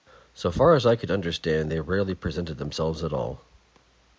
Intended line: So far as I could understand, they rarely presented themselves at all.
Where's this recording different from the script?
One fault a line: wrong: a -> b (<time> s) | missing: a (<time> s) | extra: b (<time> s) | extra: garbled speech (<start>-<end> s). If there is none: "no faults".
no faults